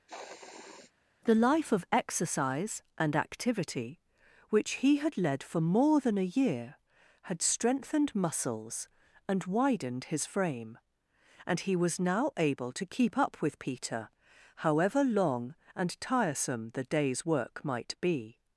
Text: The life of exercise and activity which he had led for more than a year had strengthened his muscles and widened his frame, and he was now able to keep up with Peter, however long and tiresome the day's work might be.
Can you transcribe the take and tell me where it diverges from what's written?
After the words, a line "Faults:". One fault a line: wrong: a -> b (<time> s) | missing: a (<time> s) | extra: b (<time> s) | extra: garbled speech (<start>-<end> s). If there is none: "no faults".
The life of exercise and activity which he had led for more than a year had strengthened muscles and widened his frame, and he was now able to keep up with Peter, however long and tiresome the day's work might be.
Faults:
missing: his (8.1 s)